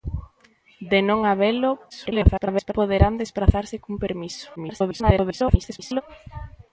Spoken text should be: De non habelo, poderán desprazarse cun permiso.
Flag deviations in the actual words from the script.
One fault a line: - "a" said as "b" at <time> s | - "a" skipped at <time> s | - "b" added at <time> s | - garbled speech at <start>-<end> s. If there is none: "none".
- garbled speech at 1.9-2.7 s
- garbled speech at 4.6-6.0 s